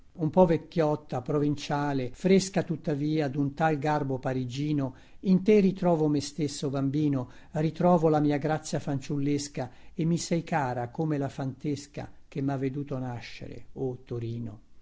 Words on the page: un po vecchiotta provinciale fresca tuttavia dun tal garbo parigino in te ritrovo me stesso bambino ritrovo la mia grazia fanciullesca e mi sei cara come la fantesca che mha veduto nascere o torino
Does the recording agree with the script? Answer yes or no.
yes